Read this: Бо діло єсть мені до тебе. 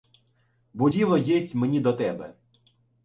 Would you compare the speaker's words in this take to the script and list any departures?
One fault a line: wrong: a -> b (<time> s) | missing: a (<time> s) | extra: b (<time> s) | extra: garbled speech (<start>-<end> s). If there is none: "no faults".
no faults